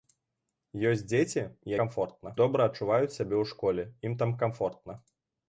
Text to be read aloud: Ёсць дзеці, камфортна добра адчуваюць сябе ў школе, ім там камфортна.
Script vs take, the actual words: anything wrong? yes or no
no